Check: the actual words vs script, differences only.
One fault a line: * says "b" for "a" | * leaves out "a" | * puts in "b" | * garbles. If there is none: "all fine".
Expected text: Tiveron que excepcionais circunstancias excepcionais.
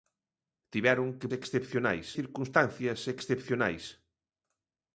all fine